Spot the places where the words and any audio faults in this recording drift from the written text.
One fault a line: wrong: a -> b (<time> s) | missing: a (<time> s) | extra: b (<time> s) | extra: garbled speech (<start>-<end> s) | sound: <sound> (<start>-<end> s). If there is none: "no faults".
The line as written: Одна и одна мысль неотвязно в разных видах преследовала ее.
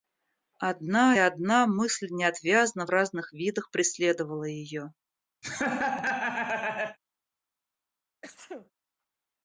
missing: и (1.1 s)
sound: laugh (5.4-7.0 s)
sound: sneeze (8.2-8.7 s)